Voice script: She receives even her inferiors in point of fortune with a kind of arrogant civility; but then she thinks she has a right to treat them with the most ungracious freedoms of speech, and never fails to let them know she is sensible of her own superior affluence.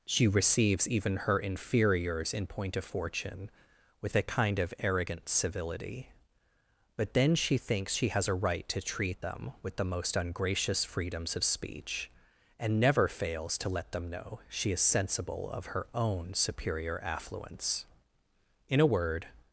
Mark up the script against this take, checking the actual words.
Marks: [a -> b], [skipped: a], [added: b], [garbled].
She receives even her inferiors in point of fortune with a kind of arrogant civility; but then she thinks she has a right to treat them with the most ungracious freedoms of speech, and never fails to let them know she is sensible of her own superior affluence. [added: In a word]